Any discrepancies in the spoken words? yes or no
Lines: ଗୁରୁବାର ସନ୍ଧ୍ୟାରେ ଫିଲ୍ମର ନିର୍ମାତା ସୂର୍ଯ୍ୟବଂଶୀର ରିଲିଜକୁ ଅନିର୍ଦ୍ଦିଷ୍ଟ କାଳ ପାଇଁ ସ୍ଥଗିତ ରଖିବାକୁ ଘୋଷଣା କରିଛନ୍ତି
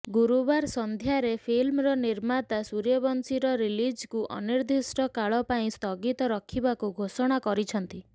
no